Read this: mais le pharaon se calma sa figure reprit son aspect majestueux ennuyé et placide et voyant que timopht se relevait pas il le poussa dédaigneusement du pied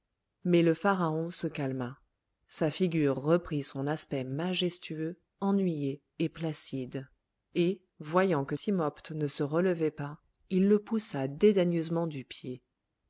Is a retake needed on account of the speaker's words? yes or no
yes